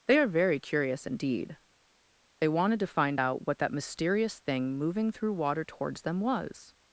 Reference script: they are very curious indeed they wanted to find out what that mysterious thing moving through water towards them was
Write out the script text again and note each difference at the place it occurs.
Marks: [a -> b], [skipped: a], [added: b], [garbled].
they are very curious indeed they wanted to find out what that mysterious thing moving through water towards them was